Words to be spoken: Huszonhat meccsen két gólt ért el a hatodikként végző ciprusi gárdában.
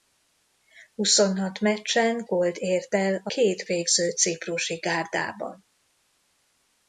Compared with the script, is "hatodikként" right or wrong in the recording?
wrong